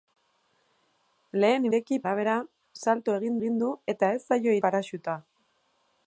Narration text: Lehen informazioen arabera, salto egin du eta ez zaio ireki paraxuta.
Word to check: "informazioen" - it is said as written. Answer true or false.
false